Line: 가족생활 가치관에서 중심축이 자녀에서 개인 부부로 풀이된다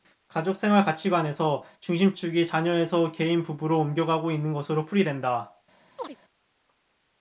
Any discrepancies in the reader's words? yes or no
yes